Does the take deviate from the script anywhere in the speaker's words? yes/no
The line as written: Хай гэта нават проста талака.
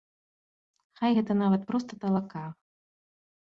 no